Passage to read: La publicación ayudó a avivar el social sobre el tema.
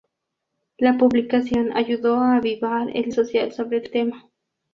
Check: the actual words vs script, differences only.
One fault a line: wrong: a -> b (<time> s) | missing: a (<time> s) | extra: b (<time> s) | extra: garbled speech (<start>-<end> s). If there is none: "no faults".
no faults